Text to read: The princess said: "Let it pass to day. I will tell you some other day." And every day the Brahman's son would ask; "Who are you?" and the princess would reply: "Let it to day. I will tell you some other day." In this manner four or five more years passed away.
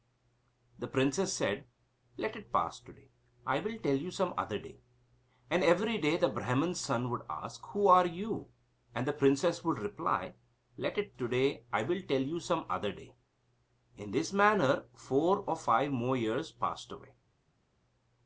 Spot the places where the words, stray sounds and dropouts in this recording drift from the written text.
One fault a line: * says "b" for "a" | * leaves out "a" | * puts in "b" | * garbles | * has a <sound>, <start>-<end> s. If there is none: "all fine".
all fine